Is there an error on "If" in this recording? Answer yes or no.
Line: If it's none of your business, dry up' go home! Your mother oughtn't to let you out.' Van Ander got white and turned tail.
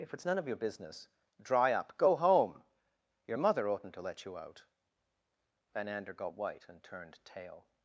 no